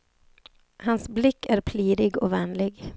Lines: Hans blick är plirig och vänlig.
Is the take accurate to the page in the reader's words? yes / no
yes